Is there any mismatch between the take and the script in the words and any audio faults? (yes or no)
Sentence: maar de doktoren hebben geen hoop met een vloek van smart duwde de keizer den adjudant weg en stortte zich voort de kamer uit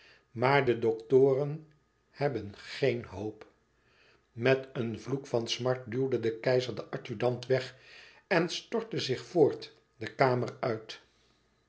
no